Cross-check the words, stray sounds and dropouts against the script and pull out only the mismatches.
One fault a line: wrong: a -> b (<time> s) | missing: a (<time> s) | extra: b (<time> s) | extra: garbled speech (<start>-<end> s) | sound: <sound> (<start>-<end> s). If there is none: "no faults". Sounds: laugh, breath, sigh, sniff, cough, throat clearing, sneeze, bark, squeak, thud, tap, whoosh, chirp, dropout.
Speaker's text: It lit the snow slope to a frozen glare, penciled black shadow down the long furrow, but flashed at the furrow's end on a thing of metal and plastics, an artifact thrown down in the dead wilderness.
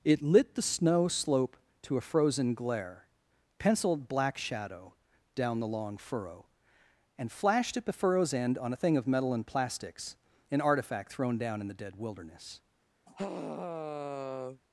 wrong: but -> and (7.2 s)
sound: sigh (13.1-14.6 s)